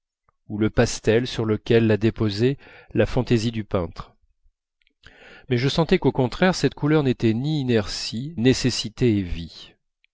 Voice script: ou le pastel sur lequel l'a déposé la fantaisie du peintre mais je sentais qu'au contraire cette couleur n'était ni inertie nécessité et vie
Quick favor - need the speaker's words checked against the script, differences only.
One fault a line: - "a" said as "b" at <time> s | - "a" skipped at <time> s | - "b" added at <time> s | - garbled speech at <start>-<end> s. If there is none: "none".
none